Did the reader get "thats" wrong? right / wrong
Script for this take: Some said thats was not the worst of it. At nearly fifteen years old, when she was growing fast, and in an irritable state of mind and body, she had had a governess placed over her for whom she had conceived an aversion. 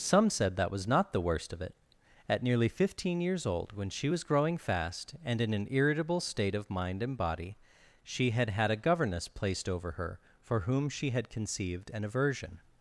wrong